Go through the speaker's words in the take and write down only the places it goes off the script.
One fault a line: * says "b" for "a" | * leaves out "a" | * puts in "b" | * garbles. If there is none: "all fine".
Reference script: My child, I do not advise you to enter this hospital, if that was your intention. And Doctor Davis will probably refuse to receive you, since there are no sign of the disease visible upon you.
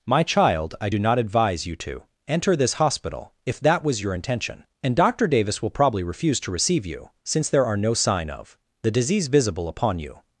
all fine